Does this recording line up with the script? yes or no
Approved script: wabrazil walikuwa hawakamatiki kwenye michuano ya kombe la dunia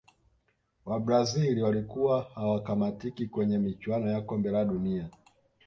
yes